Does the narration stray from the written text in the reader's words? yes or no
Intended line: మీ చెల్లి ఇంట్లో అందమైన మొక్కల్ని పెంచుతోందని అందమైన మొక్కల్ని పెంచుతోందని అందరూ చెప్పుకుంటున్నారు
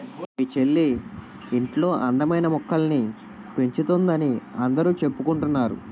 yes